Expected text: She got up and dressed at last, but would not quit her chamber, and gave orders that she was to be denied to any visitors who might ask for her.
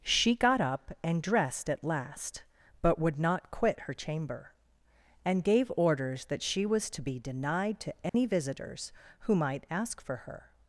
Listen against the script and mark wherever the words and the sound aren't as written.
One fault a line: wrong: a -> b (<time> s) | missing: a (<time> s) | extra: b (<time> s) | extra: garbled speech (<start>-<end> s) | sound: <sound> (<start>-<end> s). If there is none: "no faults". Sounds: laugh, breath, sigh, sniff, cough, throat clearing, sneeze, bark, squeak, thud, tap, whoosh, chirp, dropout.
sound: dropout (8.1-8.1 s)